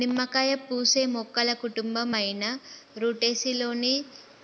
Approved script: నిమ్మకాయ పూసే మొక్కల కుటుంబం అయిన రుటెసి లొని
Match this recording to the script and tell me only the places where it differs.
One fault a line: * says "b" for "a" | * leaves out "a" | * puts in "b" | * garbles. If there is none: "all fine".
all fine